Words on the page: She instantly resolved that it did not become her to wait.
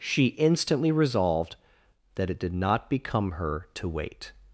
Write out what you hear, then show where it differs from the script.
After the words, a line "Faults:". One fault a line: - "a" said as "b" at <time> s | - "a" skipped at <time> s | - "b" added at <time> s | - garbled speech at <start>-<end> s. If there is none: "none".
She instantly resolved that it did not become her to wait.
Faults:
none